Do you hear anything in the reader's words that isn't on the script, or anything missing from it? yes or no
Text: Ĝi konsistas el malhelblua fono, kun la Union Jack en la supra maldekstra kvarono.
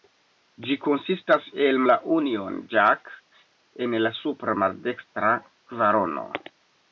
yes